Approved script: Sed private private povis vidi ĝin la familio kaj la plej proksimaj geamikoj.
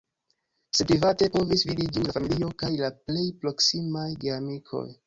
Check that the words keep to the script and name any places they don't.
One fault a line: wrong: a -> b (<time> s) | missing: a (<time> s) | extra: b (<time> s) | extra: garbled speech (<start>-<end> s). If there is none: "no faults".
missing: private (1.3 s)